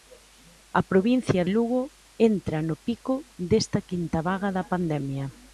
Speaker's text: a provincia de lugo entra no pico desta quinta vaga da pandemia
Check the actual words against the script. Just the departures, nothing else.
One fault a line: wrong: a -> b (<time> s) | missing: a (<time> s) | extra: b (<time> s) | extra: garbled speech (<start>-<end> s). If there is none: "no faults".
missing: de (1.4 s)